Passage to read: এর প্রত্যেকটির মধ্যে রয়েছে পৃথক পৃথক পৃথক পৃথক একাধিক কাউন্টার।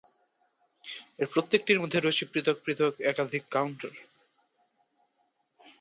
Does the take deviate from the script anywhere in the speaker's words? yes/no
yes